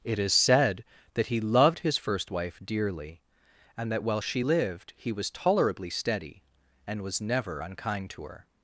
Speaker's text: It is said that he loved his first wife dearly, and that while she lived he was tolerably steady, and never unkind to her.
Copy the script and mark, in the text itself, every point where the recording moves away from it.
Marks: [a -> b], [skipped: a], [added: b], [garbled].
It is said that he loved his first wife dearly, and that while she lived he was tolerably steady, and [added: was] never unkind to her.